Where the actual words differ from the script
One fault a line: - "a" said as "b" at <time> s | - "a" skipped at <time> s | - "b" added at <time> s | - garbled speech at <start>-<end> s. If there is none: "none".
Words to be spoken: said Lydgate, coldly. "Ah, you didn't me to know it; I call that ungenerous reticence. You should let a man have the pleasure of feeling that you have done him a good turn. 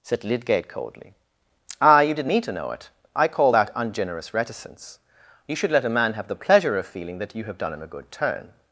none